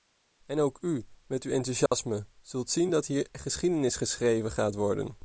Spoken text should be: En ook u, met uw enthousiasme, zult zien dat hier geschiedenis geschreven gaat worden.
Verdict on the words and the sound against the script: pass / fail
fail